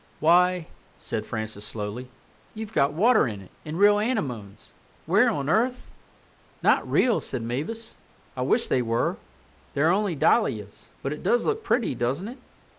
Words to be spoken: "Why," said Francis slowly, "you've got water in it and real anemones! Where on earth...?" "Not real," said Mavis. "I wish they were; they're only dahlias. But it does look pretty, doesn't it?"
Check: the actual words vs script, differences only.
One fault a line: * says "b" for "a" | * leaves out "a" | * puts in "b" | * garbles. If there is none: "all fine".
all fine